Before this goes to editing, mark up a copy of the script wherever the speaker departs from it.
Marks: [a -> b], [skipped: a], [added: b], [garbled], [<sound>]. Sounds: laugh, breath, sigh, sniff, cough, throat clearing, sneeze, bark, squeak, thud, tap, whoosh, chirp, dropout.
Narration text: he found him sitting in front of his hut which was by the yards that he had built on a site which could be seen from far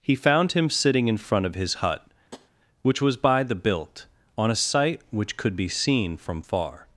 he found him sitting in front of his hut [tap] which was by the [skipped: yards that he had] built on a site which could be seen from far